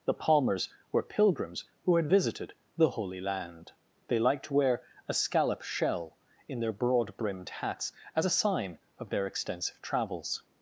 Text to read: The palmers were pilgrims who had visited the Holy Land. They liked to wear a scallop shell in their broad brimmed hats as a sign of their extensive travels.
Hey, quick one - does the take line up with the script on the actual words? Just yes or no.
yes